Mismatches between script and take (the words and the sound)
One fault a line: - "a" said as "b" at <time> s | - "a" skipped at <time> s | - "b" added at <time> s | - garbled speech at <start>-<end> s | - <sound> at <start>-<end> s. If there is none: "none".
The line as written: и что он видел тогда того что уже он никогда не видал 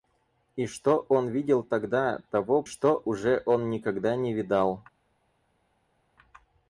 none